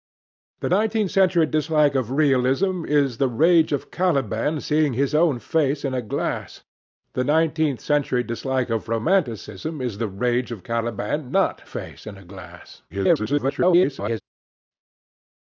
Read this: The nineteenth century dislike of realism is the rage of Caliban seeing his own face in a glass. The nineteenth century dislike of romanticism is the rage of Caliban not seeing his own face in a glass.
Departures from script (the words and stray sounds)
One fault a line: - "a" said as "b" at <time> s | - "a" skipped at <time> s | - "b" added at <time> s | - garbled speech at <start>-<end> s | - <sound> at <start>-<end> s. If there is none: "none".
- "seeing his own" skipped at 11.6 s
- garbled speech at 12.9-14.2 s